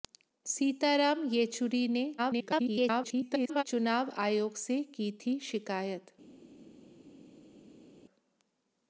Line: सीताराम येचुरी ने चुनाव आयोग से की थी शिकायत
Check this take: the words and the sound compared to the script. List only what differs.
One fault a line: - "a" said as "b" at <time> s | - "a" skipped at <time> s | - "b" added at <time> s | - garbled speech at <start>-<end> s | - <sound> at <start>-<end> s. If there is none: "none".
- garbled speech at 2.2-3.6 s